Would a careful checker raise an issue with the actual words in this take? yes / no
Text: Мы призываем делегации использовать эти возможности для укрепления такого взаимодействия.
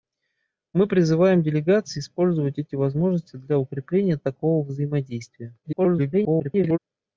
yes